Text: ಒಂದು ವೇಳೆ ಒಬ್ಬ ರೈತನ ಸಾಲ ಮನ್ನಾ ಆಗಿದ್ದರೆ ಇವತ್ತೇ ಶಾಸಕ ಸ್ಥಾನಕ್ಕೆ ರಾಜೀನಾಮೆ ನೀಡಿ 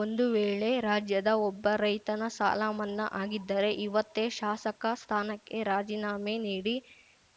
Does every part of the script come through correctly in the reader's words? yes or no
no